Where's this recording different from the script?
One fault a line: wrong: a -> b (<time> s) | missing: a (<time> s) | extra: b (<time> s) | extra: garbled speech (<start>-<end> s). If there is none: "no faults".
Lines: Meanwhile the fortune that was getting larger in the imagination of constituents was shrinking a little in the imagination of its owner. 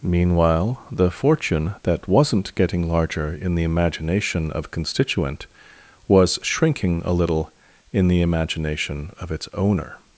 wrong: was -> wasn't (2.1 s)
wrong: constituents -> constituent (4.7 s)